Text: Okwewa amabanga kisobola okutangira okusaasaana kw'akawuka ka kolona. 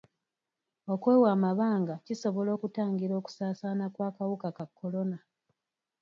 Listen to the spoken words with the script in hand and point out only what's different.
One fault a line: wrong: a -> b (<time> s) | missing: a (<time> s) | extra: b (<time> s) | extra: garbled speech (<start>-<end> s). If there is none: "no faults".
no faults